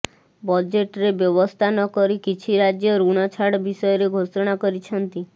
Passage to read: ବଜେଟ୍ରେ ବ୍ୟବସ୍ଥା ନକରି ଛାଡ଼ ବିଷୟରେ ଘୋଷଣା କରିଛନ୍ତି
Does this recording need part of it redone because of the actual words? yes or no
yes